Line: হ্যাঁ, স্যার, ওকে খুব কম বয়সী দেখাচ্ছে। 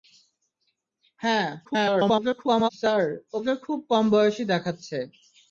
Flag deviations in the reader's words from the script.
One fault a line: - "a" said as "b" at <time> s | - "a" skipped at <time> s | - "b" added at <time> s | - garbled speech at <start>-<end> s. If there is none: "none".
- garbled speech at 1.6-2.7 s